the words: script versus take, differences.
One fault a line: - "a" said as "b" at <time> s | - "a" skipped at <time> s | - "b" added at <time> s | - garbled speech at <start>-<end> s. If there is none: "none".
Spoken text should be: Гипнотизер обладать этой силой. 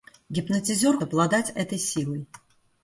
none